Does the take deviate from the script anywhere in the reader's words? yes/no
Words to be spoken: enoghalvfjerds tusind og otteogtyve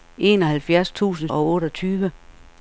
no